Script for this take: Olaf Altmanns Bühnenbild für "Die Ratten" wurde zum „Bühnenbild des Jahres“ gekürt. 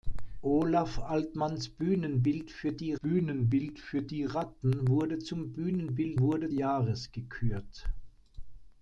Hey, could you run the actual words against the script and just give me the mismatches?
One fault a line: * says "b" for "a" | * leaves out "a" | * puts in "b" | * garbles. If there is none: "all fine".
* puts in "Bühnenbild für Die"
* says "wurde" for "des"